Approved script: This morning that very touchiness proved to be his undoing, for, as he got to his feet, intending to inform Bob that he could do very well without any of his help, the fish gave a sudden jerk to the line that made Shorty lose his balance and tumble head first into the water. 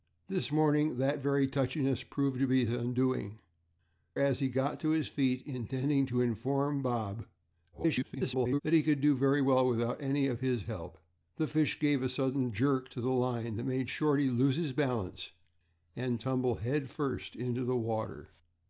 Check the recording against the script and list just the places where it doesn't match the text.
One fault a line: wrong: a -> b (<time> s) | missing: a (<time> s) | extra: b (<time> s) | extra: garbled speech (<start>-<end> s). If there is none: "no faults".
missing: for (3.4 s)
extra: garbled speech (7.7-8.6 s)